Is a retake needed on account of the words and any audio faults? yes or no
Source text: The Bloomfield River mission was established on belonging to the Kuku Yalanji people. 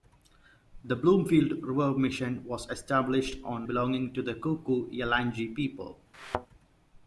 yes